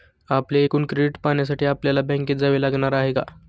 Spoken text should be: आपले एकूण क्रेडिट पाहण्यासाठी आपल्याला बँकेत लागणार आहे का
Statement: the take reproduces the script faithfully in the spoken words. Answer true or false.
false